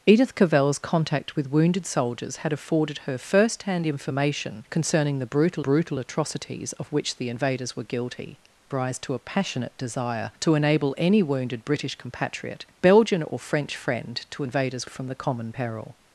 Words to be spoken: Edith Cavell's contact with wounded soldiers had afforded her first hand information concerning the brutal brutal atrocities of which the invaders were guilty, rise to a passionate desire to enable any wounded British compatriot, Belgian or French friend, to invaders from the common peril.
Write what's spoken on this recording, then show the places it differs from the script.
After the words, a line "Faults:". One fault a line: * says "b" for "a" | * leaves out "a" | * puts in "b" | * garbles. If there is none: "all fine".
Edith Cavell's contact with wounded soldiers had afforded her first hand information concerning the brutal brutal atrocities of which the invaders were guilty, rise to a passionate desire to enable any wounded British compatriot, Belgian or French friend, to invaders from the common peril.
Faults:
all fine